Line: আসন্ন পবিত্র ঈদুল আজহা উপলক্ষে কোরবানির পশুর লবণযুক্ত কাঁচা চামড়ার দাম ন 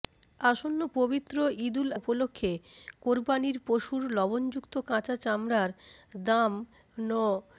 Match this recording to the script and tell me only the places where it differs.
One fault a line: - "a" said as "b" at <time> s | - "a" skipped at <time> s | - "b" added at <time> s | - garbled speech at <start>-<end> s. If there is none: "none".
- "আজহা" skipped at 1.9 s